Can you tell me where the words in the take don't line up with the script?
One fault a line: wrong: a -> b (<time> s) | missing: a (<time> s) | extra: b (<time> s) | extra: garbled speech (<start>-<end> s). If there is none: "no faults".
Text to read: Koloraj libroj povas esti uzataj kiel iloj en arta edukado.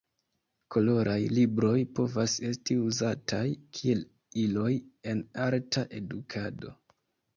no faults